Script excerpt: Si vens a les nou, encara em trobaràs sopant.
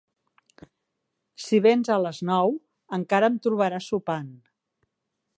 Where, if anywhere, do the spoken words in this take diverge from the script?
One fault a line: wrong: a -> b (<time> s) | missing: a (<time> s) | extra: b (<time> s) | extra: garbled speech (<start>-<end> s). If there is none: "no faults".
no faults